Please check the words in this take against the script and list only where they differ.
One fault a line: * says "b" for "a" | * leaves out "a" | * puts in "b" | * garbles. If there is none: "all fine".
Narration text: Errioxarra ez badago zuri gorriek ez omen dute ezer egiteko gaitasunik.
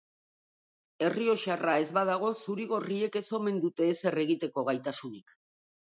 all fine